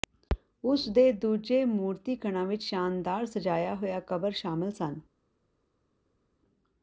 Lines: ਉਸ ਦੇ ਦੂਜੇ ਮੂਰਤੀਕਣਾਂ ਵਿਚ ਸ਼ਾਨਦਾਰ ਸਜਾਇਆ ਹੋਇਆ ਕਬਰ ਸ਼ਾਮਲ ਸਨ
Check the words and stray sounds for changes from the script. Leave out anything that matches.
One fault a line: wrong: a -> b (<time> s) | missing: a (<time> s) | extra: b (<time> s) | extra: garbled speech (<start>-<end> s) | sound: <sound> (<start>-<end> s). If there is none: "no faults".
no faults